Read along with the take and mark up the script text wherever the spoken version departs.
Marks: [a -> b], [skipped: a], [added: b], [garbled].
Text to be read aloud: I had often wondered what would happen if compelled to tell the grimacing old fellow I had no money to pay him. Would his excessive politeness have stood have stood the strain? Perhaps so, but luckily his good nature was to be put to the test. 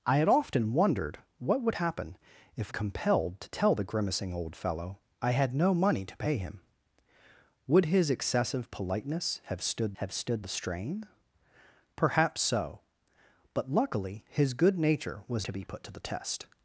I had often wondered what would happen if compelled to tell the grimacing old fellow I had no money to pay him. Would his excessive politeness have stood have stood the strain? Perhaps so, but luckily his good nature was to be put to the test.